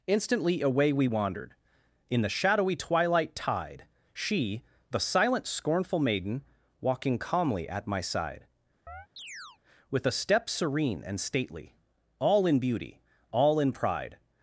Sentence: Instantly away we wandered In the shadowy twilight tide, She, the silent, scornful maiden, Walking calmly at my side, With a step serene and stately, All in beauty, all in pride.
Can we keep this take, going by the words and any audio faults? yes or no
no